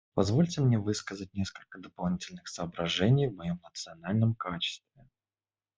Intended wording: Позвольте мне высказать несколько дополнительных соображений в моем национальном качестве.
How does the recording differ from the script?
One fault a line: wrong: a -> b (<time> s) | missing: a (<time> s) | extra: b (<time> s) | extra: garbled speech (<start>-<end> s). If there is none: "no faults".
no faults